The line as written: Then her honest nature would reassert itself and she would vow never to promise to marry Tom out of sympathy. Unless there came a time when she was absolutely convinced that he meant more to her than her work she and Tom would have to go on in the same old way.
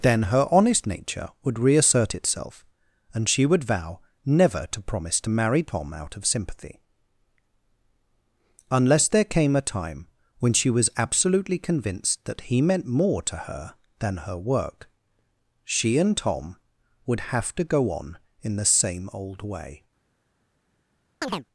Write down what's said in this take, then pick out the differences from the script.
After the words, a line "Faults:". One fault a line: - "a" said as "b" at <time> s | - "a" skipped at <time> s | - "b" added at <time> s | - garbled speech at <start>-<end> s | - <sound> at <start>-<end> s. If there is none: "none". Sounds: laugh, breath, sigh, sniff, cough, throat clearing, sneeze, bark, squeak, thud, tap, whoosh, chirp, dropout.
Then her honest nature would reassert itself and she would vow never to promise to marry Tom out of sympathy. Unless there came a time when she was absolutely convinced that he meant more to her than her work she and Tom would have to go on in the same old way.
Faults:
- chirp at 21.2-21.4 s